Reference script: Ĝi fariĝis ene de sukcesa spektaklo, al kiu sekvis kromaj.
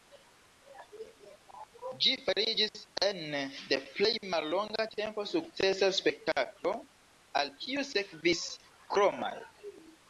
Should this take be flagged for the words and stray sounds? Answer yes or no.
yes